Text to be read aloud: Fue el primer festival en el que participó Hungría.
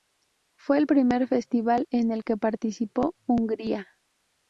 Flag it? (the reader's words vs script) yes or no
no